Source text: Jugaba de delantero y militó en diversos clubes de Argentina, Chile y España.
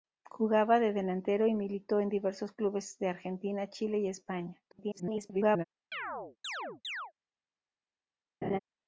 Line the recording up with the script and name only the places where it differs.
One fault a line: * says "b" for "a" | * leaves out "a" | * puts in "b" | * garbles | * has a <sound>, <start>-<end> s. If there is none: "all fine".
* garbles
* has a chirp, 5.9-7.1 s
* has a laugh, 8.4-8.6 s